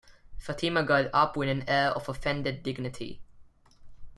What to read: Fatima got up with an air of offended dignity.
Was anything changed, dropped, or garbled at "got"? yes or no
no